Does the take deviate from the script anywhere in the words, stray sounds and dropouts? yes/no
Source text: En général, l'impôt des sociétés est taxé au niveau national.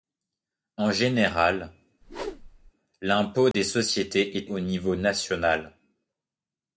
yes